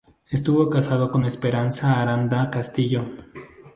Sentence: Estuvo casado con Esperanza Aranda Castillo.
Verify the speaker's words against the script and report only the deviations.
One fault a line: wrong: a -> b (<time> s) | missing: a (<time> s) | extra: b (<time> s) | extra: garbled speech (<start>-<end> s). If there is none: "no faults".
no faults